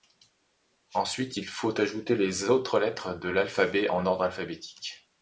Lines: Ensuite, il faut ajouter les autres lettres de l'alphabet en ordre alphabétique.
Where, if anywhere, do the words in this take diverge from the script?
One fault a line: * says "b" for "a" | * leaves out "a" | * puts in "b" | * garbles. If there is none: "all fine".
all fine